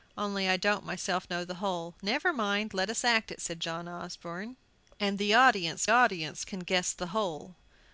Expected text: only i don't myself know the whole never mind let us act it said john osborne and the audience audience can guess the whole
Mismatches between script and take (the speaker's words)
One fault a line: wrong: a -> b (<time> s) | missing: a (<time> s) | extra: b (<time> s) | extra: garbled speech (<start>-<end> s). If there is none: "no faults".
no faults